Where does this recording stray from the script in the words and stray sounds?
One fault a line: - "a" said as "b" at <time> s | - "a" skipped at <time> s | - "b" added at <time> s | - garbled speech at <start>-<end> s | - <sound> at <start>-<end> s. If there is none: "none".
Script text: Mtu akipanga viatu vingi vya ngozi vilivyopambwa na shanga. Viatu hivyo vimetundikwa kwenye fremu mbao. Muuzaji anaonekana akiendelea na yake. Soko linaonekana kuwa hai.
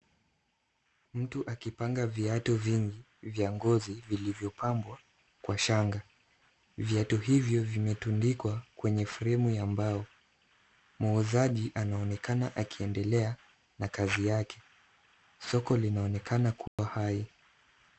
- "na" said as "kwa" at 5.4 s
- "ya" added at 9.5 s
- "kazi" added at 13.9 s
- dropout at 16.7-16.8 s